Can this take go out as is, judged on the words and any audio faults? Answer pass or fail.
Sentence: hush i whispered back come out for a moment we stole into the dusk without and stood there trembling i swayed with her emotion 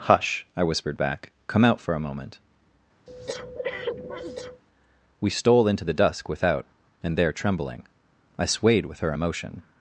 fail